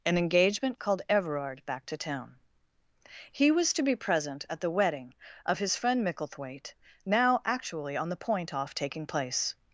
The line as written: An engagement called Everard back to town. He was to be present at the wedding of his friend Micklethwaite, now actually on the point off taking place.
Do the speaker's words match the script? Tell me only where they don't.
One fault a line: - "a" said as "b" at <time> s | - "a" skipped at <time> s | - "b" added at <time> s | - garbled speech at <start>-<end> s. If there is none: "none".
none